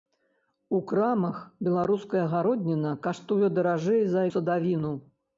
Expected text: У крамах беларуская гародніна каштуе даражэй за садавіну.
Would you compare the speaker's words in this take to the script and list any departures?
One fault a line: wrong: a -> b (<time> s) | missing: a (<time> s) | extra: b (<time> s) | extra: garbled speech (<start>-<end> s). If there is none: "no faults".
no faults